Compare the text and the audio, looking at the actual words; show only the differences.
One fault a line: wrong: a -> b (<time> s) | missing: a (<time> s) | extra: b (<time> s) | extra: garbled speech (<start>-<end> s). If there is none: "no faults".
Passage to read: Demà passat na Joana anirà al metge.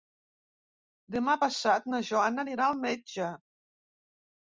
no faults